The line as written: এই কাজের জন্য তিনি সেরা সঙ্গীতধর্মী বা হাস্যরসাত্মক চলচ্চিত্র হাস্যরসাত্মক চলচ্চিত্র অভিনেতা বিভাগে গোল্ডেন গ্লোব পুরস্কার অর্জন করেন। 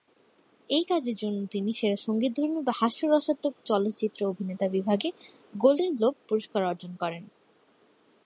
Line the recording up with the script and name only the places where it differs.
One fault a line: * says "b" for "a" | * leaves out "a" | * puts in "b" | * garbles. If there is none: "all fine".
* leaves out "হাস্যরসাত্মক চলচ্চিত্র"